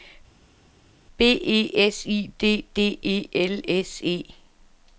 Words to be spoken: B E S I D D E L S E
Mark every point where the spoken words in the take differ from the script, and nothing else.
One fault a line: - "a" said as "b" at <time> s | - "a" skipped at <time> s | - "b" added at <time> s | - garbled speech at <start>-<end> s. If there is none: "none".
none